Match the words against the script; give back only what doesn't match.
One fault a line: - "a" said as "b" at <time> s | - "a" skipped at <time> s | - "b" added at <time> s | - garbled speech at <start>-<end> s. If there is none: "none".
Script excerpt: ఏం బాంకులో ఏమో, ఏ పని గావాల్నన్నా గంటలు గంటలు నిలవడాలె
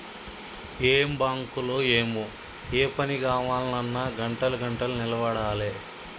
none